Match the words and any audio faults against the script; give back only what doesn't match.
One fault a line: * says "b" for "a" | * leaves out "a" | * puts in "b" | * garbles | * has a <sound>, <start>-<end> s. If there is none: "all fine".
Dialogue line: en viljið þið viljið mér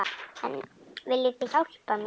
* says "hjálpa" for "viljið"